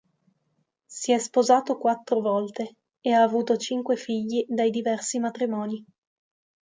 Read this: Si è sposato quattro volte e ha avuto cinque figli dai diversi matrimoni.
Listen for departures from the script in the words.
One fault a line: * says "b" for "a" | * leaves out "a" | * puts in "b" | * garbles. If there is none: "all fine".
all fine